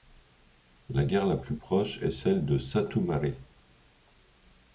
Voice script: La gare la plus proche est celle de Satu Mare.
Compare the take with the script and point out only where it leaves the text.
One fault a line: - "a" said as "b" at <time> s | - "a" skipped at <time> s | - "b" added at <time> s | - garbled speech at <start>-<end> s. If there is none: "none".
none